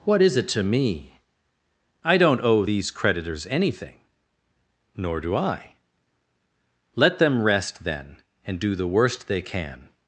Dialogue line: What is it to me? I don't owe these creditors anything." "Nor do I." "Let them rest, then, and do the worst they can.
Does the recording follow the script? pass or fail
pass